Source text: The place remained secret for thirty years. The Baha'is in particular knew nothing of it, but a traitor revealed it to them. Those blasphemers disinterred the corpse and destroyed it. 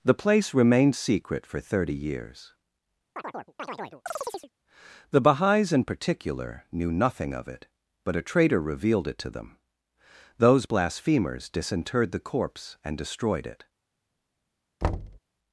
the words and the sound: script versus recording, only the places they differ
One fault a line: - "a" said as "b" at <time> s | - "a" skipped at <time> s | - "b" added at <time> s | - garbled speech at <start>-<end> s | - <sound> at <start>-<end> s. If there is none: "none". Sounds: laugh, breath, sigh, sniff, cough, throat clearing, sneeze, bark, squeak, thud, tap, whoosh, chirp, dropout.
- chirp at 3.2-4.5 s
- thud at 14.8-15.2 s